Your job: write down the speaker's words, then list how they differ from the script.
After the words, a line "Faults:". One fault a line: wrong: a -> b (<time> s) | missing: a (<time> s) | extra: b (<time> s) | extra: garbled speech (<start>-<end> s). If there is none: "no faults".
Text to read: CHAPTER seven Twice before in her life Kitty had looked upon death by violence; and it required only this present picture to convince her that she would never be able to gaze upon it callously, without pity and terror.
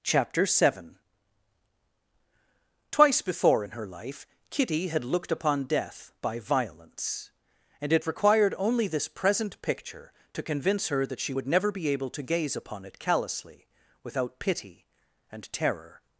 CHAPTER seven Twice before in her life Kitty had looked upon death by violence; and it required only this present picture to convince her that she would never be able to gaze upon it callously, without pity and terror.
Faults:
no faults